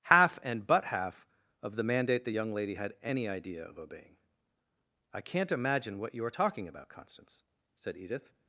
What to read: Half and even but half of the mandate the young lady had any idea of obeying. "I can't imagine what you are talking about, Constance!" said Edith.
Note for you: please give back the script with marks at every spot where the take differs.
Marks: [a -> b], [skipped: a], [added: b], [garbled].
Half and [skipped: even] but half of the mandate the young lady had any idea of obeying. "I can't imagine what you are talking about, Constance!" said Edith.